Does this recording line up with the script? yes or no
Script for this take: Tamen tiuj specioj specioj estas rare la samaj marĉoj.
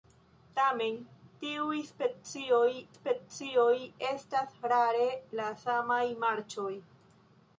yes